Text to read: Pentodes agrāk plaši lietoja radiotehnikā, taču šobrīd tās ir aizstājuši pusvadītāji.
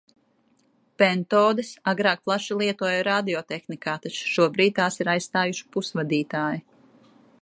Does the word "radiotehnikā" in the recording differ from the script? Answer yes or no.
no